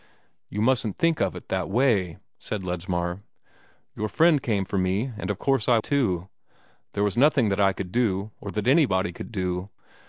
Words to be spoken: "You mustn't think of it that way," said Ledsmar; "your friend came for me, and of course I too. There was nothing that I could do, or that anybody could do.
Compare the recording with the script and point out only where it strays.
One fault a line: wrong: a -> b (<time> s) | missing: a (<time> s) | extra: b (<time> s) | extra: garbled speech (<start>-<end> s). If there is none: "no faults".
no faults